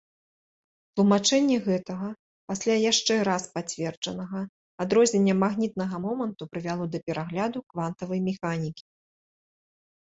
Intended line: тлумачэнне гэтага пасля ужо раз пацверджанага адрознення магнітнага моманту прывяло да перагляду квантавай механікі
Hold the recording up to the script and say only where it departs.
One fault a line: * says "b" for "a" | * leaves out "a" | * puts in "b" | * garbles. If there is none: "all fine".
* says "яшчэ" for "ужо"